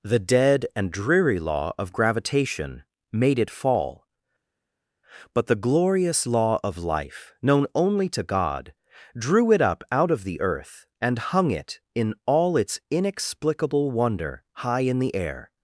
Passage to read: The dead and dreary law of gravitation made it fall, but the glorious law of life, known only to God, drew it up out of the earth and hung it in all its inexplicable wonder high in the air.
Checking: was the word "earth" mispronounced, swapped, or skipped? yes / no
no